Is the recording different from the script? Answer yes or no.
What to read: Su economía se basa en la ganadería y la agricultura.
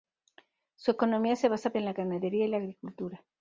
no